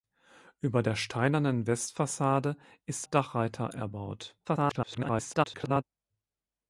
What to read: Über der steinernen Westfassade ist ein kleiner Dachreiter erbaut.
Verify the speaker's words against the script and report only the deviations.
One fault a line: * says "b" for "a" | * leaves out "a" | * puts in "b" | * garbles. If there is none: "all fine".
* leaves out "ein kleiner"
* garbles